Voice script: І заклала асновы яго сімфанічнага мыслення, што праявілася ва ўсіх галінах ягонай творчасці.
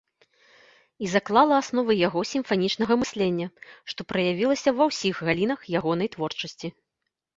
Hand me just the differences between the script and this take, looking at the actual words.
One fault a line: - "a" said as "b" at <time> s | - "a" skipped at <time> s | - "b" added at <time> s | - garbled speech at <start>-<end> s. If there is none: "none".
none